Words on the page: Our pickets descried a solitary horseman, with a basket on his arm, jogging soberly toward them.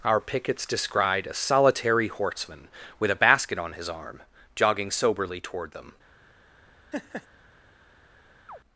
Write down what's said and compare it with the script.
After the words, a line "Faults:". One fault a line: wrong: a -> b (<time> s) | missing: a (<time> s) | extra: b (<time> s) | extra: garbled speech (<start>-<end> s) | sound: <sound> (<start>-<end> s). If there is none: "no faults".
Our pickets descried a solitary horseman, with a basket on his arm, jogging soberly toward them.
Faults:
sound: laugh (6.9-7.3 s)
sound: chirp (8.5-8.6 s)